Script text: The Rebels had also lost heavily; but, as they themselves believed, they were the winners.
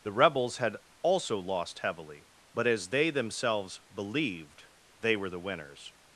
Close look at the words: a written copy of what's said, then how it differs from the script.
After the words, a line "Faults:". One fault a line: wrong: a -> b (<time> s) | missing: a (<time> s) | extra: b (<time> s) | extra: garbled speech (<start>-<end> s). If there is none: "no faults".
The Rebels had also lost heavily; but, as they themselves believed, they were the winners.
Faults:
no faults